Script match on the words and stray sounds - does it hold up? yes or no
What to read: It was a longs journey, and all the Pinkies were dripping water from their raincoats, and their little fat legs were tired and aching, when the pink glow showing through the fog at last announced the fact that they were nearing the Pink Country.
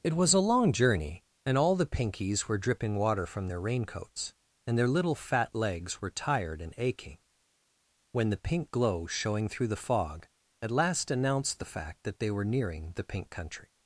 no